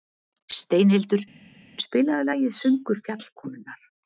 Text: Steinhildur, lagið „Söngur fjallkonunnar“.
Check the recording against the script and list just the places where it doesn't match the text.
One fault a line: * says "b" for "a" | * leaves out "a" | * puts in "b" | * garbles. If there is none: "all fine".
* puts in "spilaðu"